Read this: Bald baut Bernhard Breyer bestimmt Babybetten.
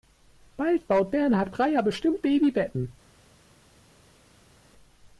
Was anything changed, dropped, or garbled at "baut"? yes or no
no